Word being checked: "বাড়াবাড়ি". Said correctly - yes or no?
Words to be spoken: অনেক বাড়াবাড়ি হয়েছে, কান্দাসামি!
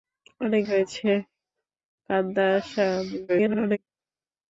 no